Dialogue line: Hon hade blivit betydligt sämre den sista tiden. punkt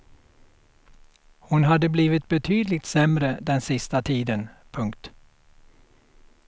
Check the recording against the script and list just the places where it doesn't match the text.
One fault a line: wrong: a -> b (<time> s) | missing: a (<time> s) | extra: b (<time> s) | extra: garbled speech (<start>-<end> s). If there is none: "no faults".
no faults